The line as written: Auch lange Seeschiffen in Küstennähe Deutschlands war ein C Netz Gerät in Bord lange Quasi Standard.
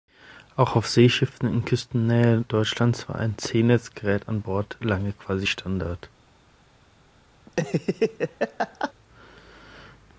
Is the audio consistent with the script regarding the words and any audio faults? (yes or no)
no